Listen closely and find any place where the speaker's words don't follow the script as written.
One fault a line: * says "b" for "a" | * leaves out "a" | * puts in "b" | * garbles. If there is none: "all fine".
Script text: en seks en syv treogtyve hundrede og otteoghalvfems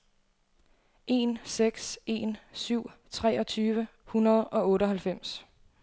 all fine